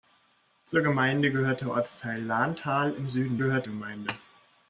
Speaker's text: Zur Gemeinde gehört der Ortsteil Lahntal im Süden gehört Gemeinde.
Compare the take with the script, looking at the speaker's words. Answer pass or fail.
pass